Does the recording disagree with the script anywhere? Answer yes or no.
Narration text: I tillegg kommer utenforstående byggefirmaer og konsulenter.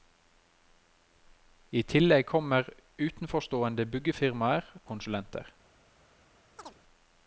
yes